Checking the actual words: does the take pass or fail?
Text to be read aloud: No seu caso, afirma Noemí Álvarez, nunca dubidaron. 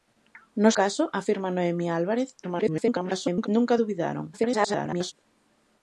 fail